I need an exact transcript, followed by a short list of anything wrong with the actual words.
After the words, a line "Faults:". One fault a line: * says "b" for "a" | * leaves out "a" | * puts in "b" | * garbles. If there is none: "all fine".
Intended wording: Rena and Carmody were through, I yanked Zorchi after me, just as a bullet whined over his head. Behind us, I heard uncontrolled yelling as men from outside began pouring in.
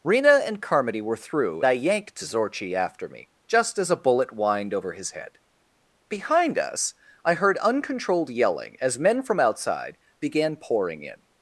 Rena and Carmody were through, I yanked Zorchi after me, just as a bullet whined over his head. Behind us, I heard uncontrolled yelling as men from outside began pouring in.
Faults:
all fine